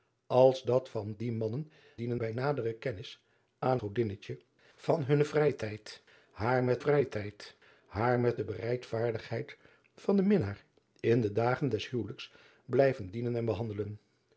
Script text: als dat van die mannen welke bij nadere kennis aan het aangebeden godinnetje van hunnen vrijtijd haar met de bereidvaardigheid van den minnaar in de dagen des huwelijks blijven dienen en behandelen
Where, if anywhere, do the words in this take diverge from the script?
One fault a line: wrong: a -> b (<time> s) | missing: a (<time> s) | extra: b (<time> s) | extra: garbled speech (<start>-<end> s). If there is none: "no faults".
wrong: welke -> dienen (1.9 s)
missing: het aangebeden (3.8 s)
extra: vrijtijd haar met (6.8 s)